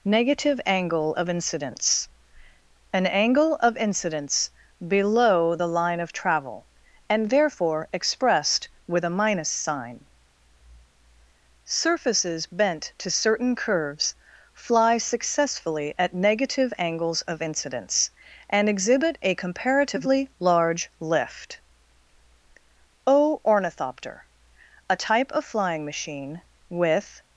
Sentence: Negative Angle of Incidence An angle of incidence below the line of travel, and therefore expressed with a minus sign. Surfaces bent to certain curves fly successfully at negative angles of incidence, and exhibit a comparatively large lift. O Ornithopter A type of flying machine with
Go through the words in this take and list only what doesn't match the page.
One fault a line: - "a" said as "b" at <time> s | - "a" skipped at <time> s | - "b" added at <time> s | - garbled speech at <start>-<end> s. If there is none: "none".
none